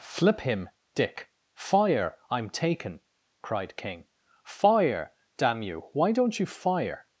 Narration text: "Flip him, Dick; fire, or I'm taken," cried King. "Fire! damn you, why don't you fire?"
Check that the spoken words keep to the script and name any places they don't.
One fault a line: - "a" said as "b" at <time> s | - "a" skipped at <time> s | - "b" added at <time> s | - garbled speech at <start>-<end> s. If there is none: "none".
- "or" skipped at 2.2 s